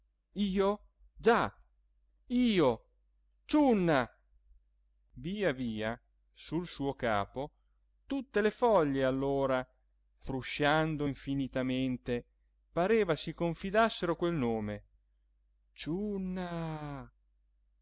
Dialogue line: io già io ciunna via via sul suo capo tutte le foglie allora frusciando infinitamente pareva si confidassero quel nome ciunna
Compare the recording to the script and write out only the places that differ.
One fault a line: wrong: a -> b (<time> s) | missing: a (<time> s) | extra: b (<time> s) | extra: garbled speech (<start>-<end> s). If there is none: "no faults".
no faults